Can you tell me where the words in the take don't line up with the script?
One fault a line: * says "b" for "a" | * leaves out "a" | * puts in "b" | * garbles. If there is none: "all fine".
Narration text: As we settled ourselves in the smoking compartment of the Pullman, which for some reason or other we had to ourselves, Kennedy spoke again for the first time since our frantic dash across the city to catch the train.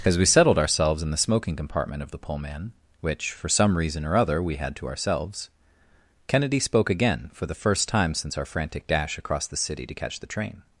all fine